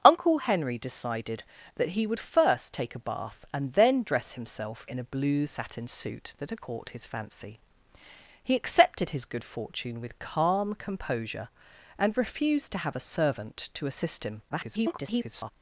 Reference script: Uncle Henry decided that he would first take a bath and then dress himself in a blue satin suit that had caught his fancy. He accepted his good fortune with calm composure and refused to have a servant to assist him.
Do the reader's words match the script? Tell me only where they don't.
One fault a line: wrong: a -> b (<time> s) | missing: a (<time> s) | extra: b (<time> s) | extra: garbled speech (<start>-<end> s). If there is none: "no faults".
extra: garbled speech (14.5-15.5 s)